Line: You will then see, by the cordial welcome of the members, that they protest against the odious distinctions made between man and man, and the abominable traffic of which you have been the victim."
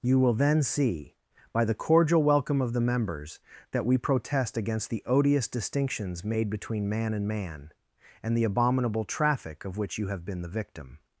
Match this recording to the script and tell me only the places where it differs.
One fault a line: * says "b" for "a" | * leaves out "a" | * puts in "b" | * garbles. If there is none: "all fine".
* says "we" for "they"